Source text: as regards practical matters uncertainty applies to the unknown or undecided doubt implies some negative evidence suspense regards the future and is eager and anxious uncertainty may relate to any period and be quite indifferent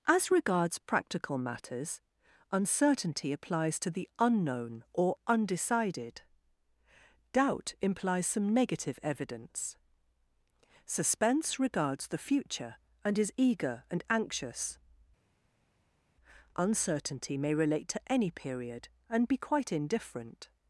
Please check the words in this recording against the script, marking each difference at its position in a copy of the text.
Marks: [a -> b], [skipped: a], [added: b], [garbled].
as regards practical matters uncertainty applies to the unknown or undecided doubt implies some negative evidence suspense regards the future and is eager and anxious uncertainty may relate to any period and be quite indifferent